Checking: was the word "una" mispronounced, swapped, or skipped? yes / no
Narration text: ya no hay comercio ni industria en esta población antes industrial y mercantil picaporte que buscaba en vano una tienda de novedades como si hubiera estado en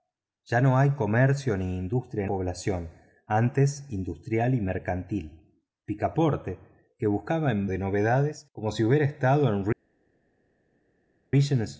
yes